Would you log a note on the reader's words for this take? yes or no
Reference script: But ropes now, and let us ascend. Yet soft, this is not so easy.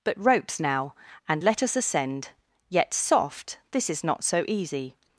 no